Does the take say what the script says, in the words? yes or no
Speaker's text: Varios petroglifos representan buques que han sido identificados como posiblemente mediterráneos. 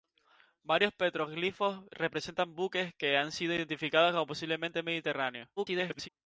no